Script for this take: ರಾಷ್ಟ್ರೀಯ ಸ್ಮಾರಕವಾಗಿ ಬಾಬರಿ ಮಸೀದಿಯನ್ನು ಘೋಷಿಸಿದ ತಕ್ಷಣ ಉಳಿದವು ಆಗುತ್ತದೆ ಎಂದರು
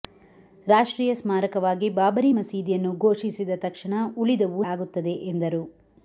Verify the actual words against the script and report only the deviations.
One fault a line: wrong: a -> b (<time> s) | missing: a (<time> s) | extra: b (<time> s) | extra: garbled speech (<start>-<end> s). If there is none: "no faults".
no faults